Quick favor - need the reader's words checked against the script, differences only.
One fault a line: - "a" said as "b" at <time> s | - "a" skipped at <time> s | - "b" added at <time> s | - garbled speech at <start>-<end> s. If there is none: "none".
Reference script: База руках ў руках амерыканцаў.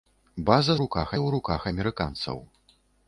none